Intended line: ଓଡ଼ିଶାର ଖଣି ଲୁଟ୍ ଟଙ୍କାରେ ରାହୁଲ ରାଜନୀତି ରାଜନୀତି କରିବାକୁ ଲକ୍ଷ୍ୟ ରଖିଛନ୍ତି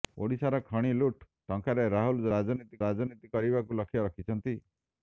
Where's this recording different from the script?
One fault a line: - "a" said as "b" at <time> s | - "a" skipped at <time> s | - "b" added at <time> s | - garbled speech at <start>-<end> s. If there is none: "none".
none